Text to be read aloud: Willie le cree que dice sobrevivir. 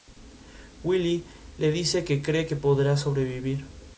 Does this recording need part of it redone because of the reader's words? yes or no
yes